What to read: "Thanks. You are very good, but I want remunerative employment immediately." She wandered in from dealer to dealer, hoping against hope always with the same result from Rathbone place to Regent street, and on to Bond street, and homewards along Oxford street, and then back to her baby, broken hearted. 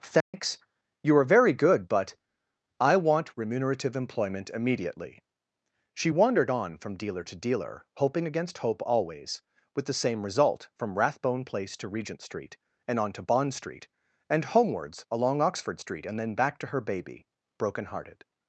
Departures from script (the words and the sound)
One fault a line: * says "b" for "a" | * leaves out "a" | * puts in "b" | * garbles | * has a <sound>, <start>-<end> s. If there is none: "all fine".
* has a dropout, 0.2-0.3 s
* says "on" for "in"